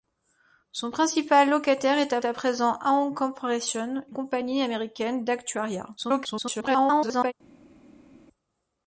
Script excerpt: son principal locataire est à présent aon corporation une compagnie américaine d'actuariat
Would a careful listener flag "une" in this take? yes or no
yes